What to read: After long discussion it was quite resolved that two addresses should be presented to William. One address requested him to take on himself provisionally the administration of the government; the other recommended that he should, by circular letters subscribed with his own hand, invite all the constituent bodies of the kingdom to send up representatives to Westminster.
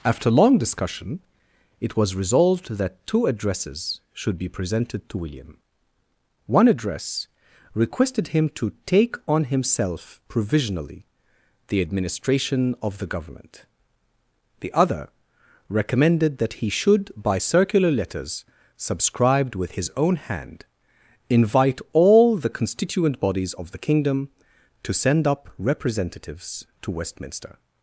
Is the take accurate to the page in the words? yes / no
no